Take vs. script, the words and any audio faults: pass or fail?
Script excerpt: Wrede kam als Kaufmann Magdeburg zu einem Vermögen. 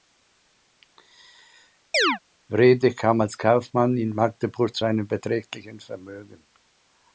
fail